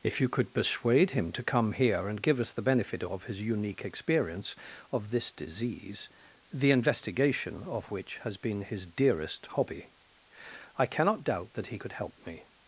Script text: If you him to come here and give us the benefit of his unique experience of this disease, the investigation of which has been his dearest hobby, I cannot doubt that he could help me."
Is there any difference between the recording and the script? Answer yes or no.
yes